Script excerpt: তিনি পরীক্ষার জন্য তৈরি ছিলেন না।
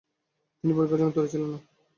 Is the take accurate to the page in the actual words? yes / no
yes